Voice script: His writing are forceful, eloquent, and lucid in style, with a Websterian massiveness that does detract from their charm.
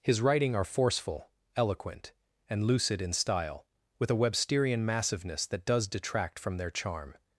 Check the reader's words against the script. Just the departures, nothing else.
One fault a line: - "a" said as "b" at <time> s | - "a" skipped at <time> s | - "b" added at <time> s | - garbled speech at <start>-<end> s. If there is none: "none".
none